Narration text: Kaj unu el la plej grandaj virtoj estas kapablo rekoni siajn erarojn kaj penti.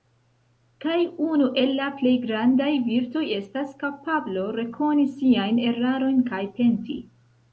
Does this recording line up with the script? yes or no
yes